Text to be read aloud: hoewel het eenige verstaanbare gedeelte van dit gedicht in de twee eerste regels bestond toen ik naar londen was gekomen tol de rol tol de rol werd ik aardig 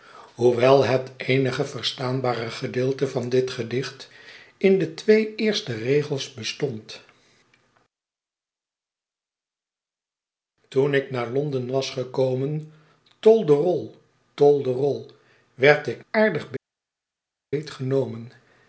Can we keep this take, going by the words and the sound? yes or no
yes